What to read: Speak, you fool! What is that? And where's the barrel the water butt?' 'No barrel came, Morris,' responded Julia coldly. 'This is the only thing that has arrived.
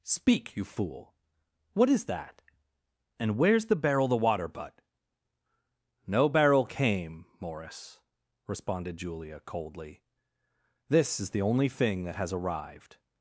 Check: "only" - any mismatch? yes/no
no